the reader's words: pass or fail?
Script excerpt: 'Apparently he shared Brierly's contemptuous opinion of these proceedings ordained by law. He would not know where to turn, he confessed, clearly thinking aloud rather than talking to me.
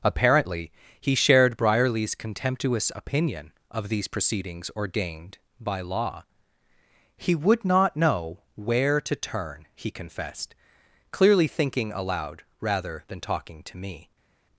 pass